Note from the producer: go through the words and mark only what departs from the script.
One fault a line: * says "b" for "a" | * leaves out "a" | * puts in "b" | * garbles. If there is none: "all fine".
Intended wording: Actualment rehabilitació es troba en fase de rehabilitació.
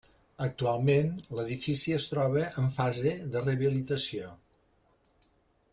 * says "l'edifici" for "rehabilitació"